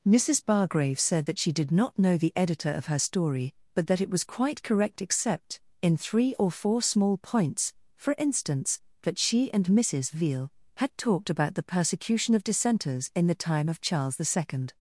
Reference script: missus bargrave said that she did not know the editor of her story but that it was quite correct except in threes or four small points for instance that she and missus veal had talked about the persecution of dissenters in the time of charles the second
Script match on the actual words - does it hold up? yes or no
no